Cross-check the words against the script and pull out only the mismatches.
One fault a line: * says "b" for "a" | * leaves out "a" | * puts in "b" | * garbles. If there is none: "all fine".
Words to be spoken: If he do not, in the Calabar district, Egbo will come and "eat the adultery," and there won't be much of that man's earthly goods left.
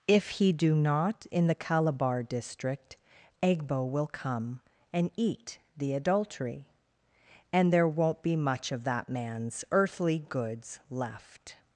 all fine